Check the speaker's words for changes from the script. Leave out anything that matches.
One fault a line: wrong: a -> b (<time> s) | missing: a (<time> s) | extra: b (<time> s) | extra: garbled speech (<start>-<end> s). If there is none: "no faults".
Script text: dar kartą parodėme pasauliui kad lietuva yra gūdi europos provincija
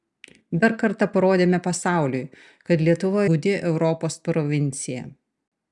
missing: yra (3.3 s)